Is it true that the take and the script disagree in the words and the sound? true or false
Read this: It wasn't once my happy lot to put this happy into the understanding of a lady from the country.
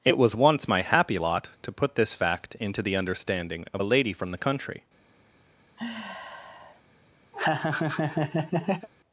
true